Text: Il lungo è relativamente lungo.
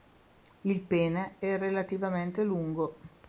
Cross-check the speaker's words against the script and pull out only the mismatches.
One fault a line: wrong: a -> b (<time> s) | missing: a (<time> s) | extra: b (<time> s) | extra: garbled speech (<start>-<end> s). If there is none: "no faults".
wrong: lungo -> pene (0.8 s)